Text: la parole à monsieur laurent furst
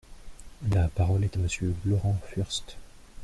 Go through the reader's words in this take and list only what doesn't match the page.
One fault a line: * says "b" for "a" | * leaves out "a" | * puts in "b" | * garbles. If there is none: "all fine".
* puts in "est"